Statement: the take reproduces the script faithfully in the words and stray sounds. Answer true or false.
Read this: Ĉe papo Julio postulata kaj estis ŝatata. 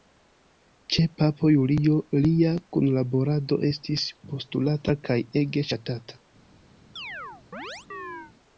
false